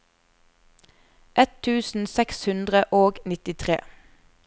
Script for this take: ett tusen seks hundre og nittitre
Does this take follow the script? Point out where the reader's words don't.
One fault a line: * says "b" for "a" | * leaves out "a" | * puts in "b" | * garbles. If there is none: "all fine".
all fine